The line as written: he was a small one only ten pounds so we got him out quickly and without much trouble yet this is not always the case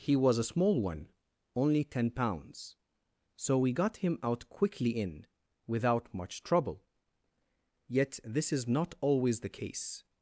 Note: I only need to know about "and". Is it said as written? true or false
false